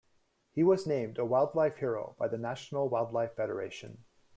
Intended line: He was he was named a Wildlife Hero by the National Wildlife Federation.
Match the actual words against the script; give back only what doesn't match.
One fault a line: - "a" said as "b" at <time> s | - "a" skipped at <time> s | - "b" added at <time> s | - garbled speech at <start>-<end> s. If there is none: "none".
- "he was" skipped at 0.9 s